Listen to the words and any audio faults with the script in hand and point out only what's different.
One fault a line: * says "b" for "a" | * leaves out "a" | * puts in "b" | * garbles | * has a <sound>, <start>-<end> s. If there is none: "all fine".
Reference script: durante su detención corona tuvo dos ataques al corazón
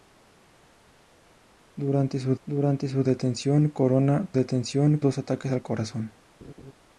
* puts in "durante su"
* says "detención" for "tuvo"
* has a laugh, 6.4-6.7 s